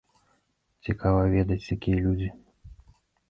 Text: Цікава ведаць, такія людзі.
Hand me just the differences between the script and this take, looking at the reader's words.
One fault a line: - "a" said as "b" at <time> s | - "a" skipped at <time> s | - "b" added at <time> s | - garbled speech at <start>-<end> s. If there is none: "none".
none